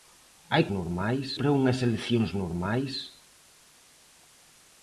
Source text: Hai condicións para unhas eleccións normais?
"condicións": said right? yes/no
no